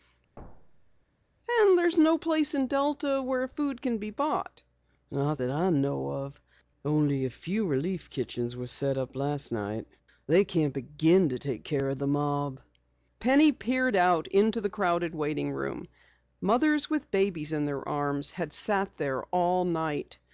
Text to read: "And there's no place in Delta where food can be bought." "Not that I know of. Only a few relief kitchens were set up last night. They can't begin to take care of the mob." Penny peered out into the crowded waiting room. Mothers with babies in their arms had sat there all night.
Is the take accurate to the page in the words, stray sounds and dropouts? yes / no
no